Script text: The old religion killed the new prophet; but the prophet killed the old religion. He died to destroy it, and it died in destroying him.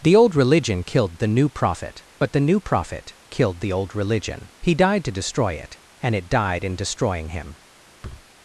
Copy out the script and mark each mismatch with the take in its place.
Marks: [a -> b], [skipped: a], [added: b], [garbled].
The old religion killed the new prophet; but the [added: new] prophet killed the old religion. He died to destroy it, and it died in destroying him.